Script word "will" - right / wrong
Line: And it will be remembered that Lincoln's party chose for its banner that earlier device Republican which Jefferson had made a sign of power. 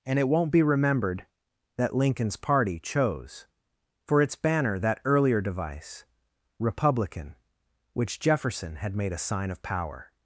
wrong